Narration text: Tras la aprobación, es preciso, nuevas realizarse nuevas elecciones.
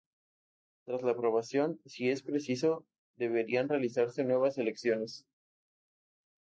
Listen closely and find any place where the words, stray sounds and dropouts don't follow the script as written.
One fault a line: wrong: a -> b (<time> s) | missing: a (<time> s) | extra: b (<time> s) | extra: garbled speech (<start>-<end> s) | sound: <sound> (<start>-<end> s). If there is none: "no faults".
extra: si (1.9 s)
wrong: nuevas -> deberían (3.1 s)